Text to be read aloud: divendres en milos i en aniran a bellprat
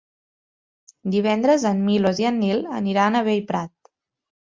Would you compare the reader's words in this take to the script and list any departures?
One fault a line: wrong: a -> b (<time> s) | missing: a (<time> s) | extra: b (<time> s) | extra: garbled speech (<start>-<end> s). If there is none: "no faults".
extra: nil (2.4 s)